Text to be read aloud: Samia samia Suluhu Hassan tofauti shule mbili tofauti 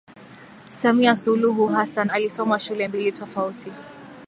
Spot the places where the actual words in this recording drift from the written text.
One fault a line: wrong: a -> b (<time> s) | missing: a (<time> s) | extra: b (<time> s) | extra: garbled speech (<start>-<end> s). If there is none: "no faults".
missing: samia (1.1 s)
wrong: tofauti -> alisoma (2.1 s)